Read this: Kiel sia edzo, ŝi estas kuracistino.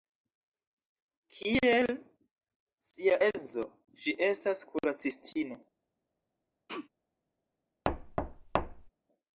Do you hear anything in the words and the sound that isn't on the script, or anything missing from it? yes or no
yes